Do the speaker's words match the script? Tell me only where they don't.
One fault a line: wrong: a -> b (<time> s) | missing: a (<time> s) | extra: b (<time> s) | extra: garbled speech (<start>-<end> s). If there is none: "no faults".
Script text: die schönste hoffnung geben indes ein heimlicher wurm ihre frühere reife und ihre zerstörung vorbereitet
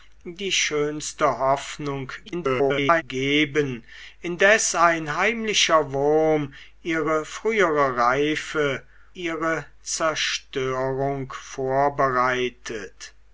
extra: garbled speech (2.3-3.0 s)
missing: und (8.8 s)